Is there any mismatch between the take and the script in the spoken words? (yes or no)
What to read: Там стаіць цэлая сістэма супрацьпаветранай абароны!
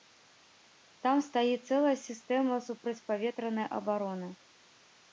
no